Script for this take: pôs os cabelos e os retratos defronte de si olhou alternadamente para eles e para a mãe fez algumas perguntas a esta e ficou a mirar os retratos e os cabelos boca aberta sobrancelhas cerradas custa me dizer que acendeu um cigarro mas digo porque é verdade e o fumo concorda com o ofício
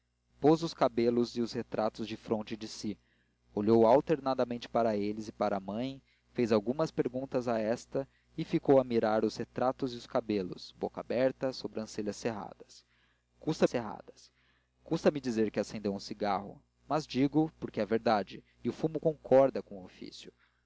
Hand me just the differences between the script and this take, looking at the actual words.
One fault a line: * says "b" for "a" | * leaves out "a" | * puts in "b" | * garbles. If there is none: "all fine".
* puts in "cerradas custa"